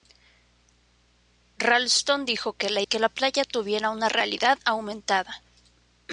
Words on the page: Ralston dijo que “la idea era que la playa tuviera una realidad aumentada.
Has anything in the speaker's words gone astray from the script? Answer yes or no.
yes